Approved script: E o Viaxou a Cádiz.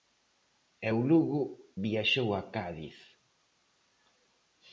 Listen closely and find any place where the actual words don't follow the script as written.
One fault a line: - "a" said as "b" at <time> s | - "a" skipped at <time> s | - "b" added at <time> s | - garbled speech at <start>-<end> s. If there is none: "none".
- "Lugo" added at 1.1 s